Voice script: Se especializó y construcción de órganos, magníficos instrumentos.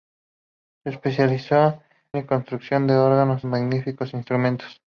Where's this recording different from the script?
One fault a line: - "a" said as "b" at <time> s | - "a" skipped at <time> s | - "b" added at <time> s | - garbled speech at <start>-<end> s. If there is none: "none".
none